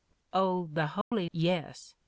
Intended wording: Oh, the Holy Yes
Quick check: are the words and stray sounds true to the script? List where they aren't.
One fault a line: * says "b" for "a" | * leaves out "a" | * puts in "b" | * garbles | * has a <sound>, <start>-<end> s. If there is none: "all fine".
* has a dropout, 1.0-1.1 s